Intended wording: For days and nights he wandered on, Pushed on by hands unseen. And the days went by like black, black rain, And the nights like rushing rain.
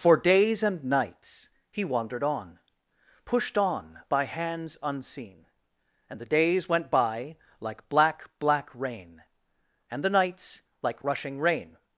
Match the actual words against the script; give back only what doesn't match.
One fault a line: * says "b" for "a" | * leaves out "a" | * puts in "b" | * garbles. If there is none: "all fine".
all fine